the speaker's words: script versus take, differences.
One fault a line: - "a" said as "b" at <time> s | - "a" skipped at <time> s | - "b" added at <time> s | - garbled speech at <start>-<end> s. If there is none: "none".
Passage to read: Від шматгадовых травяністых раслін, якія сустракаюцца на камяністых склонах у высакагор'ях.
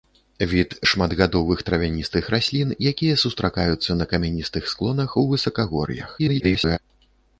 - garbled speech at 6.2-6.8 s